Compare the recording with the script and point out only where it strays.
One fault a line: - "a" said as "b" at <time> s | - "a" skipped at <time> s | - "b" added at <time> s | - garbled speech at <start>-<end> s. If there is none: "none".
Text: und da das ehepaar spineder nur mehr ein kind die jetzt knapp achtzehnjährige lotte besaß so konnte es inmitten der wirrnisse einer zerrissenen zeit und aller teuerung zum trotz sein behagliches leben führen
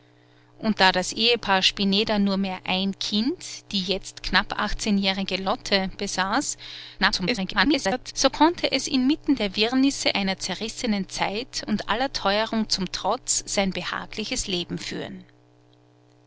- garbled speech at 7.0-8.1 s